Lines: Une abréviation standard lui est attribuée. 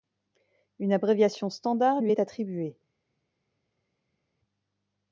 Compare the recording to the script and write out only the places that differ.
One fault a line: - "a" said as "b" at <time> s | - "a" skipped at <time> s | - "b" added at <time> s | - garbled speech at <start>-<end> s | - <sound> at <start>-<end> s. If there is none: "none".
none